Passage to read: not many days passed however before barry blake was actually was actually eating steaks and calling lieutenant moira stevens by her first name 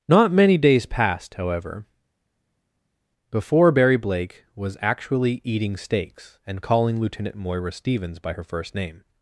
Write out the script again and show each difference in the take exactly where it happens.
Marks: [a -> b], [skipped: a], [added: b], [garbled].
not many days passed however before barry blake was actually [skipped: was actually] eating steaks and calling lieutenant moira stevens by her first name